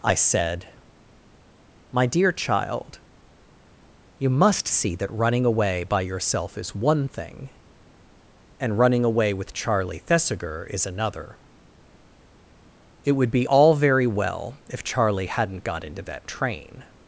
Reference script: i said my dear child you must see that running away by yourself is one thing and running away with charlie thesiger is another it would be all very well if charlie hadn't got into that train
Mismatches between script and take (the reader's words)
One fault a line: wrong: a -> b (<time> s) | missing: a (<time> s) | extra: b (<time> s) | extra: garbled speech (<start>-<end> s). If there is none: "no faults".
no faults